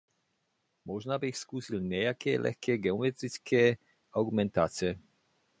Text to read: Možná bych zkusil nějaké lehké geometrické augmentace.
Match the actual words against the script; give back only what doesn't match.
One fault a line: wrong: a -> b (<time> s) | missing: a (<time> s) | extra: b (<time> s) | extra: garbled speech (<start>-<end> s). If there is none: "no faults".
no faults